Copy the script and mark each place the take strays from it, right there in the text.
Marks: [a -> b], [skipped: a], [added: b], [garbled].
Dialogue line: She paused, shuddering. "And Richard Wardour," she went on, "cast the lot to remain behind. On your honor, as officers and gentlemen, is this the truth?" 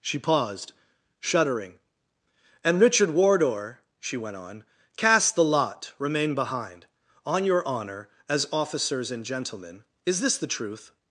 She paused, shuddering. "And Richard Wardour," she went on, "cast the lot [skipped: to] remain behind. On your honor, as officers and gentlemen, is this the truth?"